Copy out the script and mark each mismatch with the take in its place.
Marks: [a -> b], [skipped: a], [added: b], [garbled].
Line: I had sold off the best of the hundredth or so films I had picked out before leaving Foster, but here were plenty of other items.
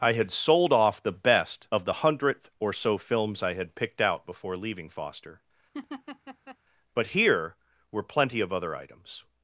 I had sold off the best of the hundredth or so films I had picked out before leaving Foster, but here were plenty of other items.